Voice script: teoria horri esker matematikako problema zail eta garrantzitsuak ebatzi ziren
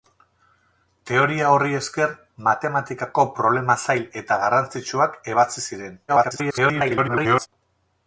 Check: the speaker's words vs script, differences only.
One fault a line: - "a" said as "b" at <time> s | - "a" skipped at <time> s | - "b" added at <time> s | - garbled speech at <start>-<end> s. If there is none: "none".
- garbled speech at 6.1-7.5 s